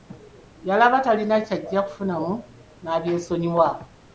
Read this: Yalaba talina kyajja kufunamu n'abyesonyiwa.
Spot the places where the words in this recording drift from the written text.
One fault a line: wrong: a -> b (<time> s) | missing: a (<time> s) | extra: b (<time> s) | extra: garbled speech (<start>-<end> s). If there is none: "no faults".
no faults